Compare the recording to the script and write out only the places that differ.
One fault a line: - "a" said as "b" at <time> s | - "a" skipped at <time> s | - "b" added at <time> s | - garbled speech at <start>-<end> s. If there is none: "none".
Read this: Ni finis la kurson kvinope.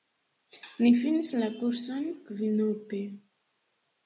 none